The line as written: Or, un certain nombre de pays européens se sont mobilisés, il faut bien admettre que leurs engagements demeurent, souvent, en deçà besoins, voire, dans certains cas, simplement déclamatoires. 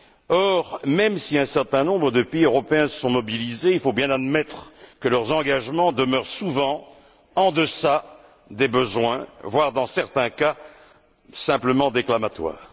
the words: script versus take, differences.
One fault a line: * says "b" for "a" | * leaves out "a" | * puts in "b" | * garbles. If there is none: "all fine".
* puts in "même si"
* puts in "des"